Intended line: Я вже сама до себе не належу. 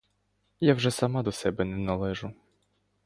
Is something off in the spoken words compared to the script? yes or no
no